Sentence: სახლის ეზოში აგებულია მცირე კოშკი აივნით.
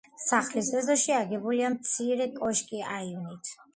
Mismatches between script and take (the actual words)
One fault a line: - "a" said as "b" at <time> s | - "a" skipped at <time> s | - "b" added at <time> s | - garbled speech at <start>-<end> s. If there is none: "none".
none